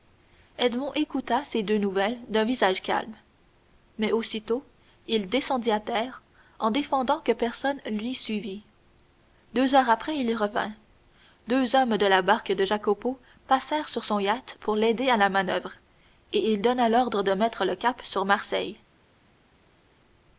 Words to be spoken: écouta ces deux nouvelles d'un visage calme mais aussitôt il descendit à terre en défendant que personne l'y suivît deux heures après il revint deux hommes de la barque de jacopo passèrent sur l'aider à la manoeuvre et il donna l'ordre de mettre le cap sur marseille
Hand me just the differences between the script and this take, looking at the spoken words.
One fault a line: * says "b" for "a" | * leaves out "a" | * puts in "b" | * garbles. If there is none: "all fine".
* puts in "son yacht pour"